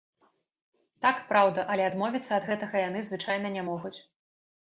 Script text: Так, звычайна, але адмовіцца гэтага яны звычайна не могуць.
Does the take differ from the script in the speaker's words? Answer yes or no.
yes